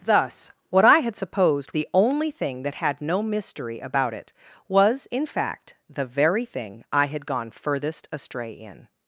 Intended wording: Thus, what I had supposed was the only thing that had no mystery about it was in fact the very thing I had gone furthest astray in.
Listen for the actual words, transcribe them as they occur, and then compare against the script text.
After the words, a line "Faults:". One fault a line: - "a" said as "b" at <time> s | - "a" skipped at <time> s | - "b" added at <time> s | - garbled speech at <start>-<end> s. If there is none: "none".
Thus, what I had supposed the only thing that had no mystery about it was in fact the very thing I had gone furthest astray in.
Faults:
- "was" skipped at 1.7 s